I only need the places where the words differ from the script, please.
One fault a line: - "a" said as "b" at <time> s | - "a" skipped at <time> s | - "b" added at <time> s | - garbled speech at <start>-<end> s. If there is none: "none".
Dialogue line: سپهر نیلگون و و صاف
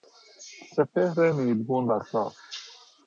- "و" skipped at 2.0 s